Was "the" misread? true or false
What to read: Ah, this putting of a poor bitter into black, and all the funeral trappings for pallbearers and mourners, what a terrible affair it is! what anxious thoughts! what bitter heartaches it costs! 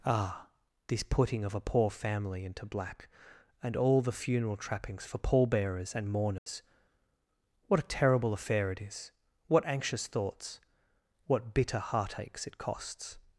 false